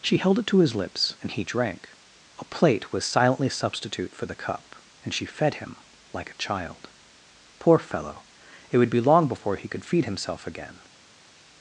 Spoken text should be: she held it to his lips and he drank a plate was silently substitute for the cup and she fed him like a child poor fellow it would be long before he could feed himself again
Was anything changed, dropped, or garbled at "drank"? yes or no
no